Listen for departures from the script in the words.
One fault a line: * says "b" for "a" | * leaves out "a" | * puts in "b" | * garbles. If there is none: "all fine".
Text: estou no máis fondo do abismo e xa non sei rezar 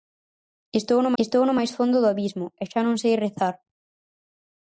* puts in "estou no"